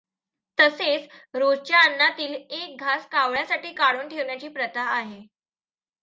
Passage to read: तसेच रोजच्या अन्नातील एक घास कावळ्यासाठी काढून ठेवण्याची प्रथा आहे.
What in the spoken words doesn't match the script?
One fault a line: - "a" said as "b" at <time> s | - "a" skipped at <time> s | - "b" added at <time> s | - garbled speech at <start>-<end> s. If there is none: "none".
none